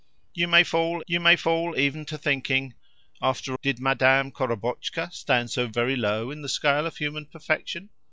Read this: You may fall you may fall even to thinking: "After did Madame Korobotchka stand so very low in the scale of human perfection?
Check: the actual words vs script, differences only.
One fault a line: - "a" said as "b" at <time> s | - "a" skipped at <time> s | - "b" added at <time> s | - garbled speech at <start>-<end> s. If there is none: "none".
none